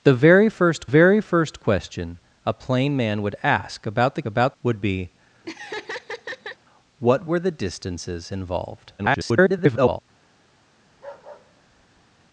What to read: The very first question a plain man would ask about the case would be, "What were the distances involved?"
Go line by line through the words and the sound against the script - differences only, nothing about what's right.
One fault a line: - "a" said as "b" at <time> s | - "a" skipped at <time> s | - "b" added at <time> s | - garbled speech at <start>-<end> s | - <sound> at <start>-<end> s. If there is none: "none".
- "very first" added at 0.9 s
- "case" said as "about" at 4.3 s
- laugh at 5.4-6.6 s
- garbled speech at 9.0-10.0 s
- bark at 10.9-12.3 s